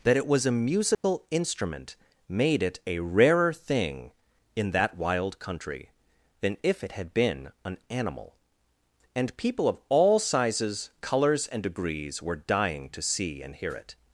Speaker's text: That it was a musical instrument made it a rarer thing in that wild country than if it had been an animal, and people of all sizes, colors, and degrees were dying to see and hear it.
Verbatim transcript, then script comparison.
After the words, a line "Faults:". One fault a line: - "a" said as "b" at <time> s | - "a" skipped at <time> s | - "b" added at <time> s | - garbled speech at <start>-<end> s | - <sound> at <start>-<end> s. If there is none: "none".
That it was a musical instrument made it a rarer thing in that wild country than if it had been an animal, and people of all sizes, colors, and degrees were dying to see and hear it.
Faults:
- dropout at 0.9-1.0 s